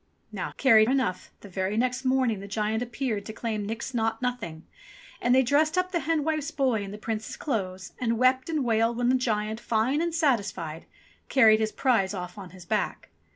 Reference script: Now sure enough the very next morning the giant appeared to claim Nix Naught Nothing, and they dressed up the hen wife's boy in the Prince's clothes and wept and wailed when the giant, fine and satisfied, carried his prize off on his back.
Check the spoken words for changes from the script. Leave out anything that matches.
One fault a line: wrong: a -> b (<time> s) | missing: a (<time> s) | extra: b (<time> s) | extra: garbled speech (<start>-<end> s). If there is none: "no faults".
wrong: sure -> carried (0.6 s)